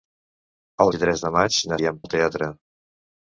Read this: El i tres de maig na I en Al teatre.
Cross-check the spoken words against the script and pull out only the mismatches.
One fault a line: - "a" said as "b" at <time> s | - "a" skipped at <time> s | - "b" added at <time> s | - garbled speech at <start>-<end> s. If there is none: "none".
none